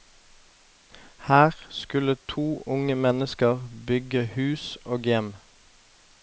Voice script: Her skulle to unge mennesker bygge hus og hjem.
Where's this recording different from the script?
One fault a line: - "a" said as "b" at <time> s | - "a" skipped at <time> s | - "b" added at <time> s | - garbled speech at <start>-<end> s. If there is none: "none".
none